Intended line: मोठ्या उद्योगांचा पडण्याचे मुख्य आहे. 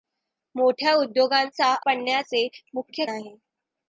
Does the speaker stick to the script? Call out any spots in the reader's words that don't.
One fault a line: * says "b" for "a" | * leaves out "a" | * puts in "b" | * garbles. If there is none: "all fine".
all fine